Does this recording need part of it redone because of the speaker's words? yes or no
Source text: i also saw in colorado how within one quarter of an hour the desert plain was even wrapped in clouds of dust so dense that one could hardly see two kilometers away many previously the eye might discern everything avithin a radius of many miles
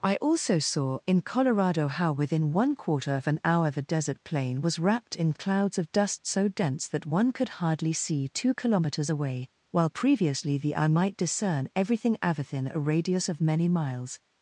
yes